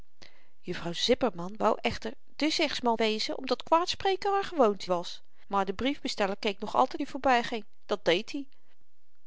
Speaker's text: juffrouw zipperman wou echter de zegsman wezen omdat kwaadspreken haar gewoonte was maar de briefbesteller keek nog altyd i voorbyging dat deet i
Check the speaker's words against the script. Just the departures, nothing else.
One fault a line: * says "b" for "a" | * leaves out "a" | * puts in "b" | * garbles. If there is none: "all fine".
all fine